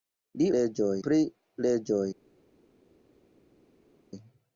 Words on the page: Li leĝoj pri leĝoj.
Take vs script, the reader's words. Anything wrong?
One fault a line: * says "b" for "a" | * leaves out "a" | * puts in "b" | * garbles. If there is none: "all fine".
all fine